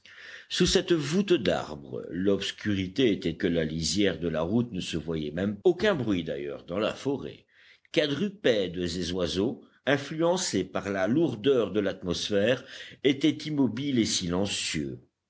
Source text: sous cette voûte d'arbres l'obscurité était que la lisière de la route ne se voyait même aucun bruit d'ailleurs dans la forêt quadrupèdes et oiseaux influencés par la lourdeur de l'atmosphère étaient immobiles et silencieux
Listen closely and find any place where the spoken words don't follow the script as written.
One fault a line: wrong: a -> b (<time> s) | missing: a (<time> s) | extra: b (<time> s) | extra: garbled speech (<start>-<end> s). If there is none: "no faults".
no faults